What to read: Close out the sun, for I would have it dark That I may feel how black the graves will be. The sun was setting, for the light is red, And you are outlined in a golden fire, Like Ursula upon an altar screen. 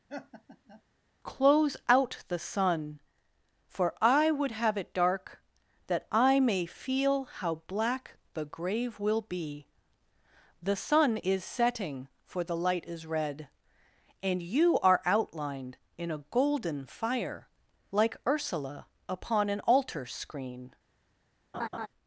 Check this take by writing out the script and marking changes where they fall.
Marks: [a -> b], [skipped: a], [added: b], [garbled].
Close out the sun, for I would have it dark That I may feel how black the [graves -> grave] will be. The sun [was -> is] setting, for the light is red, And you are outlined in a golden fire, Like Ursula upon an altar screen.